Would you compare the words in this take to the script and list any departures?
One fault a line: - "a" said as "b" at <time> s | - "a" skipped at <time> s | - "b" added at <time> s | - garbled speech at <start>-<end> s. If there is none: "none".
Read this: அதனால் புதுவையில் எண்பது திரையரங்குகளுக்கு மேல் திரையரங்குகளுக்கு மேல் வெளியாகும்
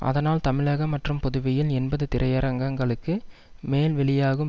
- "தமிழகம் மற்றும்" added at 0.5 s
- "திரையரங்குகளுக்கு மேல்" skipped at 3.9 s